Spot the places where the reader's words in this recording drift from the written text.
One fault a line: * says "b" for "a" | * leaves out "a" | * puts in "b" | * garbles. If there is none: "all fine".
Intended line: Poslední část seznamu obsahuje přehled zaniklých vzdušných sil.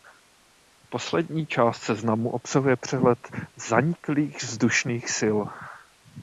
all fine